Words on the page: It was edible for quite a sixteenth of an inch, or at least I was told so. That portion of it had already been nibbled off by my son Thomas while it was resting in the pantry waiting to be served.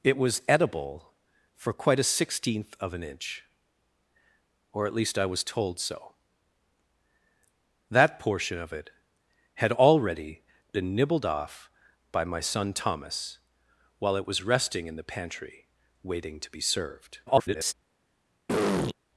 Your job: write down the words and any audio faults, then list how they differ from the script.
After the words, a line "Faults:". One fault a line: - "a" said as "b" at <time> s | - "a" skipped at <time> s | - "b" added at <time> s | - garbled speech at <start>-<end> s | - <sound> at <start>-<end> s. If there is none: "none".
It was edible for quite a sixteenth of an inch, or at least I was told so. That portion of it had already been nibbled off by my son Thomas while it was resting in the pantry waiting to be served. [garbled]
Faults:
- garbled speech at 17.3-17.7 s
- throat clearing at 18.5-18.9 s